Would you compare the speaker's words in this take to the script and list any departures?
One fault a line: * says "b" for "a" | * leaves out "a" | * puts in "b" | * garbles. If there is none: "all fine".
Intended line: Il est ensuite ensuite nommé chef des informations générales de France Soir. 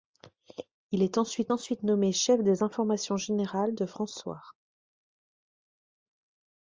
all fine